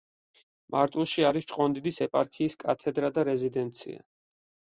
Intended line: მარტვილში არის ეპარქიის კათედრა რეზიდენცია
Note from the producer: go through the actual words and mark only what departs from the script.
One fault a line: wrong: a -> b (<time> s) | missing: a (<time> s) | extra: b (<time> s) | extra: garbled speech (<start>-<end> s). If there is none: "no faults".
extra: ჭყონდიდის (1.5 s)
extra: და (3.1 s)